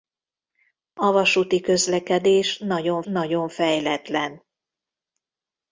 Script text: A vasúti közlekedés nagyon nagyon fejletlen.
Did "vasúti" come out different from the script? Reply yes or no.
no